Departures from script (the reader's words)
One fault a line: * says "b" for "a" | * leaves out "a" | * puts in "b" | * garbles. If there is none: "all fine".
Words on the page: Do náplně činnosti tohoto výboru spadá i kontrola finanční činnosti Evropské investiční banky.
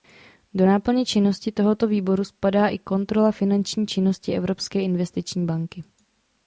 all fine